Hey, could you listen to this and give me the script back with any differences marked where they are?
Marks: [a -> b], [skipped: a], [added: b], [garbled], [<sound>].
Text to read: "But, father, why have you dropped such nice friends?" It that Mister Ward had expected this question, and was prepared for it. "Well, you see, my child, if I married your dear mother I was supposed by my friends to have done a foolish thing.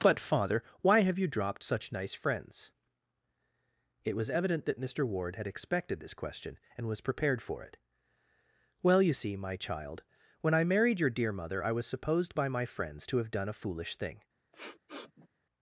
"But, father, why have you dropped such nice friends?" It [added: was evident] that Mister Ward had expected this question, and was prepared for it. "Well, you see, my child, [if -> when] I married your dear mother I was supposed by my friends to have done a foolish thing. [sniff]